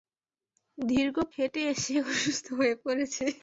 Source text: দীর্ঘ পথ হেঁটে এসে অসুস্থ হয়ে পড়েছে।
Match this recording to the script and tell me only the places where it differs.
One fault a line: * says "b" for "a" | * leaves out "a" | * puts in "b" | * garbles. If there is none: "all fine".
* leaves out "পথ"